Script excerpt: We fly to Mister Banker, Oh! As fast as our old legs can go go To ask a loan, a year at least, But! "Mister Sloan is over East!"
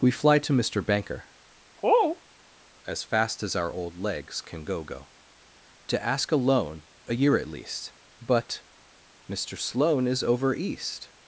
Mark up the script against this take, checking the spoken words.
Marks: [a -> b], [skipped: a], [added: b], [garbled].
We fly to Mister Banker, Oh! As fast as our old legs can go go To ask a loan, a year at least, But! "Mister Sloan is over East!"